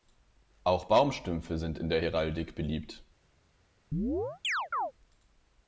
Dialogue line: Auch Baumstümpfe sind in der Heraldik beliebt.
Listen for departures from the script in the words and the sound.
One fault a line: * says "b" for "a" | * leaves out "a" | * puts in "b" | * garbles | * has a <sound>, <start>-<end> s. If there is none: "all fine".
* has a chirp, 3.9-4.9 s